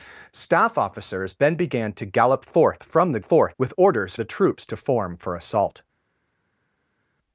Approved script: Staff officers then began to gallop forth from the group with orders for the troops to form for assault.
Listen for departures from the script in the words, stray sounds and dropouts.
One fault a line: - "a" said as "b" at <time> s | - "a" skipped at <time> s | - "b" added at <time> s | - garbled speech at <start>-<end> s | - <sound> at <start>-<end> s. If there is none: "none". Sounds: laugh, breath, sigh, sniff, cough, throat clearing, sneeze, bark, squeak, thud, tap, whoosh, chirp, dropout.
- "group" said as "forth" at 3.2 s
- "for" skipped at 4.1 s